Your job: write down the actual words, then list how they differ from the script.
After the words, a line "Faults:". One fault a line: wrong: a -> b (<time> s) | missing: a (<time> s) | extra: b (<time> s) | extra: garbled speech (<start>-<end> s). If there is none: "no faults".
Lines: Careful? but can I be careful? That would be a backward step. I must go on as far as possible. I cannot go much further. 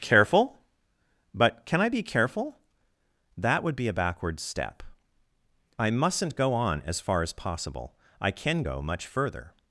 Careful? but can I be careful? That would be a backward step. I mustn't go on as far as possible. I can go much further.
Faults:
wrong: must -> mustn't (5.9 s)
wrong: cannot -> can (8.3 s)